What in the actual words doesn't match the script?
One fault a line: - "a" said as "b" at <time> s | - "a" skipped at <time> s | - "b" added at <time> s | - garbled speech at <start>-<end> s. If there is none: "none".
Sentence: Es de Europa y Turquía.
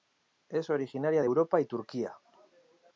- "originaria" added at 0.7 s